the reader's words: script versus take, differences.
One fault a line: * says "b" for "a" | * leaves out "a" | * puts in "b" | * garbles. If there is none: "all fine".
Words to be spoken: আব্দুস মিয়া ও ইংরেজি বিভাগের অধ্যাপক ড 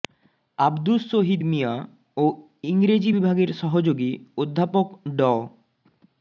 * puts in "শহীদ"
* puts in "সহযোগী"